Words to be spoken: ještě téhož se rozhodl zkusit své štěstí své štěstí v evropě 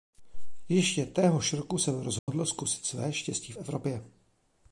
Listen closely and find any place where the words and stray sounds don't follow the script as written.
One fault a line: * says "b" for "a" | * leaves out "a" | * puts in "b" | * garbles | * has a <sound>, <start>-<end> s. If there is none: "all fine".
* puts in "roku"
* has a dropout, 2.2-2.3 s
* leaves out "své štěstí"